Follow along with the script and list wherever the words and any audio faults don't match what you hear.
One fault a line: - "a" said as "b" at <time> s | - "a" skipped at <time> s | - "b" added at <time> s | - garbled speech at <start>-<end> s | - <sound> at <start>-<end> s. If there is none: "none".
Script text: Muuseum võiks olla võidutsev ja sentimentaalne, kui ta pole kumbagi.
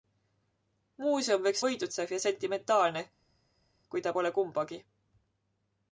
- "olla" skipped at 1.6 s